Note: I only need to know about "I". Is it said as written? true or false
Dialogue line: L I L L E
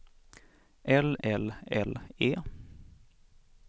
false